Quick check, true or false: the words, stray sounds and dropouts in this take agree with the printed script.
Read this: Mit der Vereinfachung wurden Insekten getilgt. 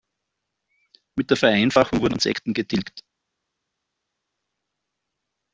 true